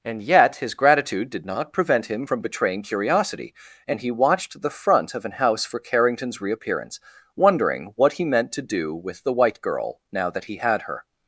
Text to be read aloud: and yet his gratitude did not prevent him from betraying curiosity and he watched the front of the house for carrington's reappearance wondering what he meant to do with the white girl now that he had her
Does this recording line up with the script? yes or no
no